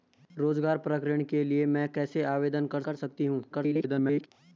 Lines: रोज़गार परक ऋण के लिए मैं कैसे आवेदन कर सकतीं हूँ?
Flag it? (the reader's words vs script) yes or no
yes